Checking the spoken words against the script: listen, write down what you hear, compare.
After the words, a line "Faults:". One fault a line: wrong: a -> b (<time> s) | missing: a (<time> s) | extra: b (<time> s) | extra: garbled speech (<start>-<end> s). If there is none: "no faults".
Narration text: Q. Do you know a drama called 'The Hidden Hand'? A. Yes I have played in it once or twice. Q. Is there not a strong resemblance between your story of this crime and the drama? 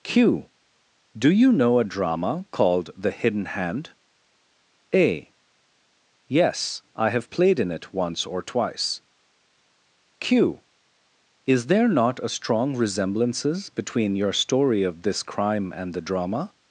Q. Do you know a drama called 'The Hidden Hand'? A. Yes I have played in it once or twice. Q. Is there not a strong resemblances between your story of this crime and the drama?
Faults:
wrong: resemblance -> resemblances (12.8 s)